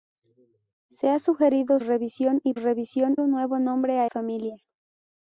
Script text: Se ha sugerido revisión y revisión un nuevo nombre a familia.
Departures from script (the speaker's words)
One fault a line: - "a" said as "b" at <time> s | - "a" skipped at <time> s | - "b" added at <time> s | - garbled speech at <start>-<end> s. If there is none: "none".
none